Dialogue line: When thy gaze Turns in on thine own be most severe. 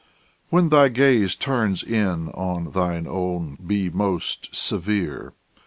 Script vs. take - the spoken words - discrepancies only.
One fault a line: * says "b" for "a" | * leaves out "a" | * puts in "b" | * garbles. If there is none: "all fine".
all fine